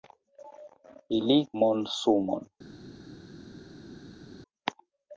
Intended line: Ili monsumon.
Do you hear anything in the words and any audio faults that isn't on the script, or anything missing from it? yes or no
no